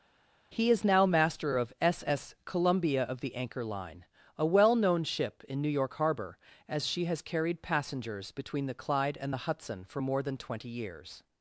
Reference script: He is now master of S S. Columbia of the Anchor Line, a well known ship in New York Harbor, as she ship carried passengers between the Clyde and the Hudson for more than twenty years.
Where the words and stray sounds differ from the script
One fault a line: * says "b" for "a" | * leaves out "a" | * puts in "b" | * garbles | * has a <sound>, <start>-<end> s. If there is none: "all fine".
* says "has" for "ship"